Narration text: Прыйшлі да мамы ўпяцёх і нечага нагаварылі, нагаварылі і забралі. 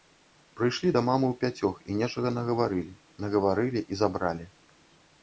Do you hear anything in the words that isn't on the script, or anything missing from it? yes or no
no